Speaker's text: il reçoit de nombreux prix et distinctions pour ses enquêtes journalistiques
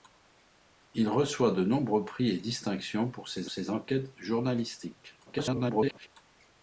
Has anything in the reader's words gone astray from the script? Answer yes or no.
yes